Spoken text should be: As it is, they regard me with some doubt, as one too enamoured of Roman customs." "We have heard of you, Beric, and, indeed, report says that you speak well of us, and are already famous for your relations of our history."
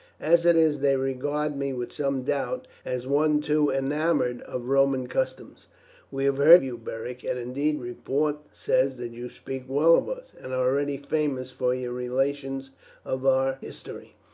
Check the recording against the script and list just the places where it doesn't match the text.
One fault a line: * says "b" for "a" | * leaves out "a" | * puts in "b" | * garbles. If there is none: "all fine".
* leaves out "of"